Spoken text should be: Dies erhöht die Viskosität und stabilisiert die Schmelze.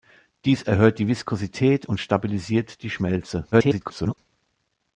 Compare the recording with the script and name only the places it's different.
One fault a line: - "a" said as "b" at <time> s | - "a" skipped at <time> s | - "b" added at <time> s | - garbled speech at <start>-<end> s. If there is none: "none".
- garbled speech at 3.5-4.2 s